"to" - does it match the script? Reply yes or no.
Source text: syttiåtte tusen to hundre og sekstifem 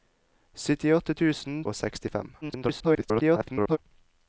no